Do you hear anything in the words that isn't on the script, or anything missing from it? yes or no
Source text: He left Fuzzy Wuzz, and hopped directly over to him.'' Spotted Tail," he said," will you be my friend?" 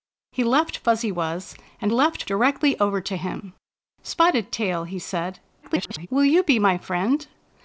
yes